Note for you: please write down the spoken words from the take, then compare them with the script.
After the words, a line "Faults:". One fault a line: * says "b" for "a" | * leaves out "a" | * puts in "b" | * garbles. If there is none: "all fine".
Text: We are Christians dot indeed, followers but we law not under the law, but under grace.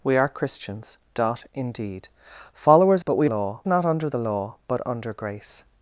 We are Christians dot indeed, followers but we law not under the law, but under grace.
Faults:
all fine